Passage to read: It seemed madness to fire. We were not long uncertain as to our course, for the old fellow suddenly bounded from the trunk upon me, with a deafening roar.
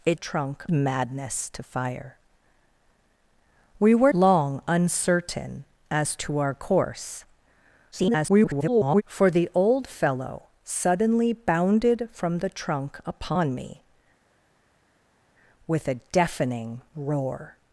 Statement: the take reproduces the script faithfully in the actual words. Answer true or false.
false